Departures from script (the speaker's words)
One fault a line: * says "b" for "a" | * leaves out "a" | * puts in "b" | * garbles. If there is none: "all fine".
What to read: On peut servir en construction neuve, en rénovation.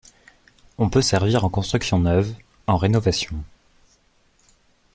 all fine